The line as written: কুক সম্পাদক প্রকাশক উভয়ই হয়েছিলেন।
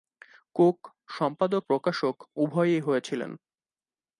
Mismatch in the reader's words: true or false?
false